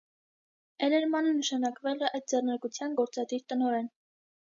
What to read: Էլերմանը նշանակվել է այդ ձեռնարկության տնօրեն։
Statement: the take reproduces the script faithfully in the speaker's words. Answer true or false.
false